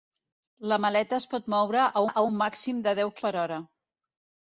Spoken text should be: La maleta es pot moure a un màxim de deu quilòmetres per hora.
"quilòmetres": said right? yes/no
no